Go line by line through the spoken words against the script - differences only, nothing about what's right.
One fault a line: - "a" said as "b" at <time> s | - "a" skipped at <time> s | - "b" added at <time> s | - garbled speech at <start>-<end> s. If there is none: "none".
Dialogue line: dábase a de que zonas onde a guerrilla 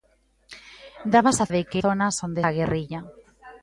none